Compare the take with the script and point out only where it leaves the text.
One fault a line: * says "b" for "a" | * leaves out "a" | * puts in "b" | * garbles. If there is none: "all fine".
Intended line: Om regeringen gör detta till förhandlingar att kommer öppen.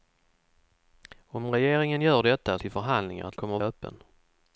all fine